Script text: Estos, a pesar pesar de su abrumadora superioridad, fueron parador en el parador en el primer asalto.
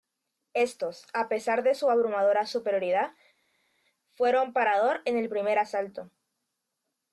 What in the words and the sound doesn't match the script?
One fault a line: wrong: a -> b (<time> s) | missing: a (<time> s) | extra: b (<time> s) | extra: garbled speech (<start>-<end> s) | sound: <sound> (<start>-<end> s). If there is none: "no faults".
missing: pesar (1.6 s)
missing: parador en el (5.3 s)